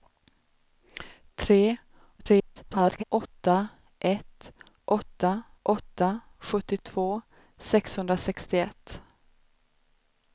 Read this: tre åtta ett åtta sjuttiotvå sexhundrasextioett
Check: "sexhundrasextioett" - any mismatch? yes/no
no